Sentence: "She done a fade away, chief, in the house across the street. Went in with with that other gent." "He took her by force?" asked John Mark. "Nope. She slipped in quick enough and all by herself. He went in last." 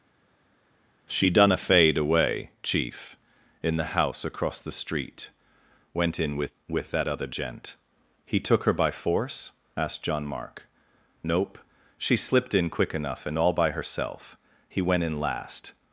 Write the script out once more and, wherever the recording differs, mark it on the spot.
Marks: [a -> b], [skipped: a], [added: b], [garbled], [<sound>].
"She done a fade away, chief, in the house across the street. Went in with with that other gent." "He took her by force?" asked John Mark. "Nope. She slipped in quick enough and all by herself. He went in last."